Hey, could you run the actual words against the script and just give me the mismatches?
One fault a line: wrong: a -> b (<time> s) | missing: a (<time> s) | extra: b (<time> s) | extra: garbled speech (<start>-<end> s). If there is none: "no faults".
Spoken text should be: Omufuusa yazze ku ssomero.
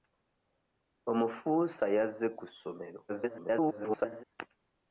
extra: garbled speech (3.1-4.2 s)